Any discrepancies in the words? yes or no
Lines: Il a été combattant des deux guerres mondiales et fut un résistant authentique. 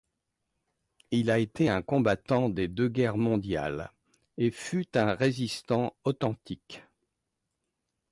yes